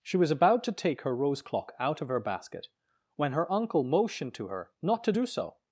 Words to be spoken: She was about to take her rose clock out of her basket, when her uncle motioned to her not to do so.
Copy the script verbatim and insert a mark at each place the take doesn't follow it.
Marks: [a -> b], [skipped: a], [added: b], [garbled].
She was about to take her rose clock out of her basket, when her uncle motioned to her not to do so.